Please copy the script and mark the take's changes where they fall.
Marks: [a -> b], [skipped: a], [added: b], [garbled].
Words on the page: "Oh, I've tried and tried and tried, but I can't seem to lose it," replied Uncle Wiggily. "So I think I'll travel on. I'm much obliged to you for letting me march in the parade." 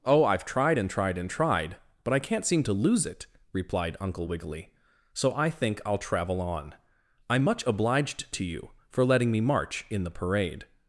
"Oh, I've tried and tried and tried, but I can't seem to lose it," replied Uncle Wiggily. "So I think I'll travel on. I'm much obliged to you for letting me march in the parade."